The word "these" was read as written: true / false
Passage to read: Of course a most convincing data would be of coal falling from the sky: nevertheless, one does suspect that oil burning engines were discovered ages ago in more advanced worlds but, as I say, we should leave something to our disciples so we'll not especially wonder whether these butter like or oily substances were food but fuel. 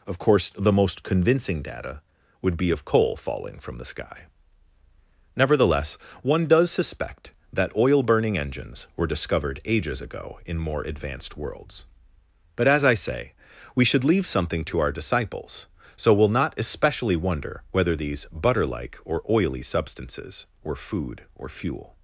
true